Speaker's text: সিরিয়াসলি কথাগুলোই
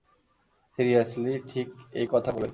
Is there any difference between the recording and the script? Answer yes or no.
yes